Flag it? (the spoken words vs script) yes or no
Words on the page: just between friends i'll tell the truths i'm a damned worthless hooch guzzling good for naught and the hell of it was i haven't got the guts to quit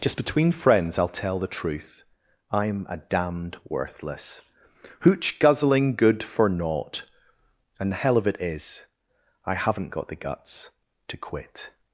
yes